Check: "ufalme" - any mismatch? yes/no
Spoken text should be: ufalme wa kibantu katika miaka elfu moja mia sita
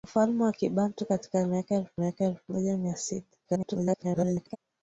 no